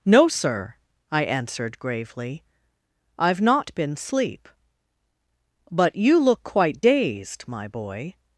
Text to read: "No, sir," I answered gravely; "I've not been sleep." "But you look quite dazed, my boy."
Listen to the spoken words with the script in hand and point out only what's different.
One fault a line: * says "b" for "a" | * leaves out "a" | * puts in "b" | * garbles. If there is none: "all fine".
all fine